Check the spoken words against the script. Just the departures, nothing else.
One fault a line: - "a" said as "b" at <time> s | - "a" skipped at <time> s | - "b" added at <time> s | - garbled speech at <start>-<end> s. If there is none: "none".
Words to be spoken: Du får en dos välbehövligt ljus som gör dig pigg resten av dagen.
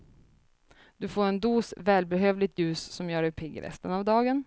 none